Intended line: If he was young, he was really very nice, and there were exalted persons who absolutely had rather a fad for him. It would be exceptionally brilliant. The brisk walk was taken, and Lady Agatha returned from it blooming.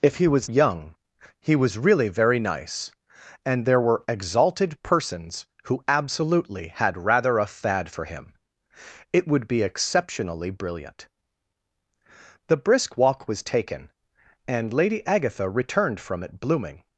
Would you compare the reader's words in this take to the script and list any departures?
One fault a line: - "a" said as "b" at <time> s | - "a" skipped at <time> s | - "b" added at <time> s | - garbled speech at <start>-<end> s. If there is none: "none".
none